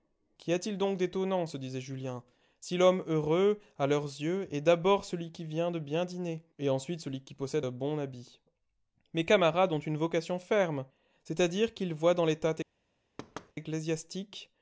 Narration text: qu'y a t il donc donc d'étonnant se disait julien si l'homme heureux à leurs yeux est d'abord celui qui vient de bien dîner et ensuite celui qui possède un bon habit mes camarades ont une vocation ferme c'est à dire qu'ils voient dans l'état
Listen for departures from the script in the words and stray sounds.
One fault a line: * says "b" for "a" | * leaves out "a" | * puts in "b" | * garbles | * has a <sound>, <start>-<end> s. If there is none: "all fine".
* leaves out "donc"
* has a thud, 13.2-13.5 s